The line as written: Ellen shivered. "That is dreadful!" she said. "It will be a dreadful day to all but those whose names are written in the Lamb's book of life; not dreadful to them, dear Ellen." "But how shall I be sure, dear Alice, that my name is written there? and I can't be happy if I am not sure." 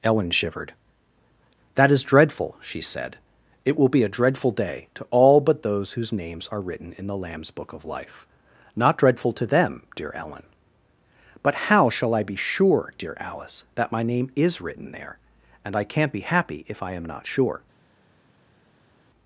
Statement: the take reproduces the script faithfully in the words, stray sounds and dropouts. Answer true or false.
true